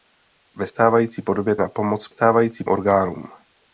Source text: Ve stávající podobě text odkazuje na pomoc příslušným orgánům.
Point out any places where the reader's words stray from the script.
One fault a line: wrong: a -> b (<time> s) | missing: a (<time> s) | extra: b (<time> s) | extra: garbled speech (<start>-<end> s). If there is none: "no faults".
missing: text odkazuje (1.6 s)
wrong: příslušným -> stávající (2.1 s)